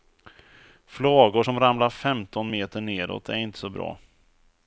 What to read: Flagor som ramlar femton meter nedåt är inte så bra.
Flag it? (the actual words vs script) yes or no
no